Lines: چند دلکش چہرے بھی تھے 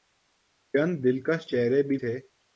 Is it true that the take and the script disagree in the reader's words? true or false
false